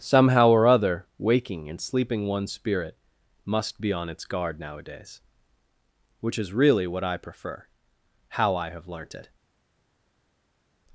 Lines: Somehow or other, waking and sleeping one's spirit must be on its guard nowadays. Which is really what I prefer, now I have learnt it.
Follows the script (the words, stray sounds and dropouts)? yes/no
no